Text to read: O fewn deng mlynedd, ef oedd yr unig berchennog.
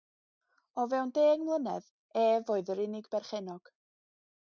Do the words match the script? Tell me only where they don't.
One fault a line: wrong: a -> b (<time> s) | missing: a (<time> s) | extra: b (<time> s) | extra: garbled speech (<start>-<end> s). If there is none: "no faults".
no faults